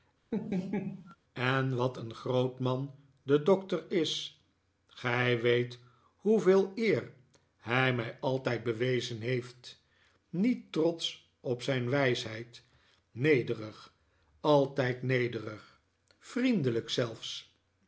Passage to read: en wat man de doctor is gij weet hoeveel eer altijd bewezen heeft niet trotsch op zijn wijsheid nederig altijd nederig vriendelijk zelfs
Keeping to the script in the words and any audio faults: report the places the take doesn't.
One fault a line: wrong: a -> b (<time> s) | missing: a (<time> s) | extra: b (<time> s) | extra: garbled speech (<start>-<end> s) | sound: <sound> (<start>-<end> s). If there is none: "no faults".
sound: laugh (0.3-1.2 s)
extra: een groot (2.0 s)
extra: hij mij (7.6 s)